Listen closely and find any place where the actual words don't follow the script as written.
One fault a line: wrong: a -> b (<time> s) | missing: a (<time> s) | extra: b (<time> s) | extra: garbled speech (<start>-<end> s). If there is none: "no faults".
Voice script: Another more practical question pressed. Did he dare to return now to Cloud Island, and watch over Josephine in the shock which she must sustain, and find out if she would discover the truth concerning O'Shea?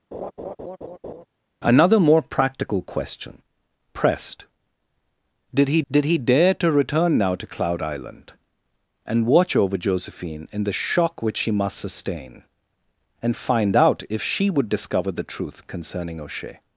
extra: did he (5.9 s)